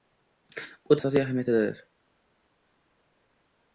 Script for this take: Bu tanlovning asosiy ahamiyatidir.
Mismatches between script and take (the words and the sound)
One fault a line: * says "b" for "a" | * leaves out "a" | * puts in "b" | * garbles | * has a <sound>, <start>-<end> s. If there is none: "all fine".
* leaves out "tanlovning"